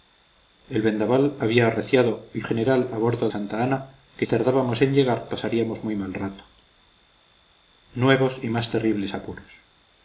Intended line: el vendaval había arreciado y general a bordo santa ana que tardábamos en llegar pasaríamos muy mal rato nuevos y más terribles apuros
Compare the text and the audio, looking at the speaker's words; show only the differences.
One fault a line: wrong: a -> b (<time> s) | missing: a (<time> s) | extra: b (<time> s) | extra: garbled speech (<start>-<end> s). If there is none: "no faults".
no faults